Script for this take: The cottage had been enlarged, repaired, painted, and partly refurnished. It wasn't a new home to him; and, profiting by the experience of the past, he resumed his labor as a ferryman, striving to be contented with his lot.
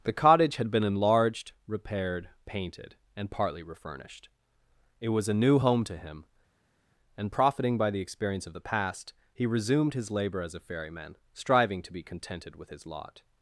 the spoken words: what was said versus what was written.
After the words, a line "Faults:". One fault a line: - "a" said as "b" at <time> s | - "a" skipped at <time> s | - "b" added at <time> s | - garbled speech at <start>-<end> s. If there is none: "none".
The cottage had been enlarged, repaired, painted, and partly refurnished. It was a new home to him; and, profiting by the experience of the past, he resumed his labor as a ferryman, striving to be contented with his lot.
Faults:
- "wasn't" said as "was" at 5.1 s